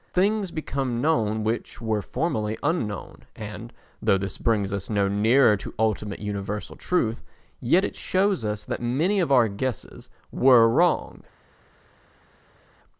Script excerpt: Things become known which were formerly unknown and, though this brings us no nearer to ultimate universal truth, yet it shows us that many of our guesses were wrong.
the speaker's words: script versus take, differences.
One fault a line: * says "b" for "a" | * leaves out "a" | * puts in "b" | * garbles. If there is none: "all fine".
all fine